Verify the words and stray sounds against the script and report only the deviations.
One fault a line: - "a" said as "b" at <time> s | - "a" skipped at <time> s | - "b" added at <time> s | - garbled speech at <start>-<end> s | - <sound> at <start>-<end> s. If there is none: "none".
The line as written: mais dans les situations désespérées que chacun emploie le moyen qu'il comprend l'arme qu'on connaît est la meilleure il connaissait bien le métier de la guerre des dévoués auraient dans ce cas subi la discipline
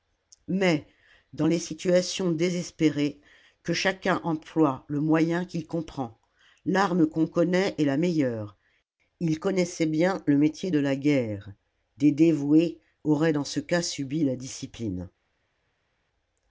none